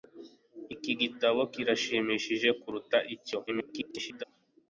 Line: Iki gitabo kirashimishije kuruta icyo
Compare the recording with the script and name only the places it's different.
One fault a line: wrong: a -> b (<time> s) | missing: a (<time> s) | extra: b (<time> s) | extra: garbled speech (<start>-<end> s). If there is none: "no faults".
extra: garbled speech (3.5-4.2 s)